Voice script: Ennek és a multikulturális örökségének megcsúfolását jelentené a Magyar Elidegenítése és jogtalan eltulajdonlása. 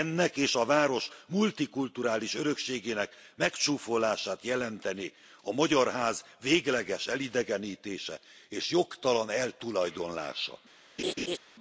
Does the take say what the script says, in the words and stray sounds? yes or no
no